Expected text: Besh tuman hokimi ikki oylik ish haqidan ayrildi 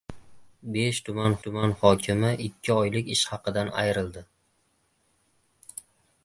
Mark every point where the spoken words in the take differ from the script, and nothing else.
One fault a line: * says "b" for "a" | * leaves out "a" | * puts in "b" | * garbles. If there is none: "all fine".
* puts in "tuman"